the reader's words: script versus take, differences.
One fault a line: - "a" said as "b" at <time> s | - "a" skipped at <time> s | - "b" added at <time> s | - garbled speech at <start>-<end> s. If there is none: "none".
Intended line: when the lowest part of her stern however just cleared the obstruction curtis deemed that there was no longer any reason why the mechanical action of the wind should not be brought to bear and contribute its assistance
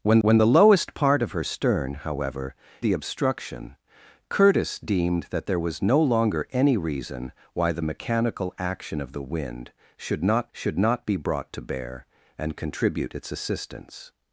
- "when" added at 0.2 s
- "just cleared" skipped at 2.5 s
- "should not" added at 10.5 s